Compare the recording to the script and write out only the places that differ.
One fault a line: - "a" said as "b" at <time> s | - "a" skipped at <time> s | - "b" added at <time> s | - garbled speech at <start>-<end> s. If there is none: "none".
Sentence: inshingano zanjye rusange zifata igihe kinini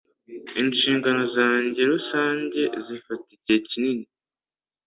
none